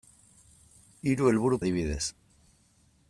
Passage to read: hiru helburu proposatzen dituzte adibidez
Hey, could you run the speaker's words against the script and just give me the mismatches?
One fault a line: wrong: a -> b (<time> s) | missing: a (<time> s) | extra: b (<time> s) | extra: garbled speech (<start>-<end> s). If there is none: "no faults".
missing: proposatzen dituzte (1.6 s)